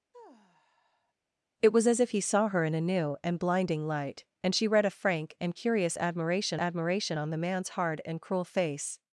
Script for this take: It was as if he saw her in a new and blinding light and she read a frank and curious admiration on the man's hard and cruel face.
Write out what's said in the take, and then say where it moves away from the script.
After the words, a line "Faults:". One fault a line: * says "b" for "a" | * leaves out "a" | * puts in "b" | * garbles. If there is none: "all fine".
It was as if he saw her in a new and blinding light and she read a frank and curious admiration admiration on the man's hard and cruel face.
Faults:
* puts in "admiration"